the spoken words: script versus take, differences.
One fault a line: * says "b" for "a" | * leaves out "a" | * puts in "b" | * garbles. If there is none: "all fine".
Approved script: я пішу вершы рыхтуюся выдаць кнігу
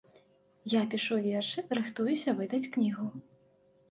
all fine